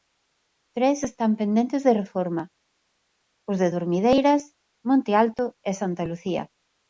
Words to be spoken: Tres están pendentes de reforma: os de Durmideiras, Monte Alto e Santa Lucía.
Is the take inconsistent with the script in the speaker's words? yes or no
no